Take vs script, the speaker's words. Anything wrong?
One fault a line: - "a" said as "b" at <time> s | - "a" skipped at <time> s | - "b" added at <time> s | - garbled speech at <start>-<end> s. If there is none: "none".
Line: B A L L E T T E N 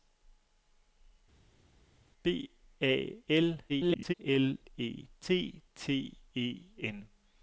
- garbled speech at 3.7-4.1 s